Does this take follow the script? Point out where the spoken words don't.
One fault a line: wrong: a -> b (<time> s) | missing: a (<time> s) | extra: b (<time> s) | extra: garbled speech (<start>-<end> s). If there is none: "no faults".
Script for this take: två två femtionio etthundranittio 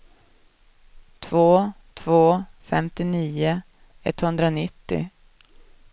no faults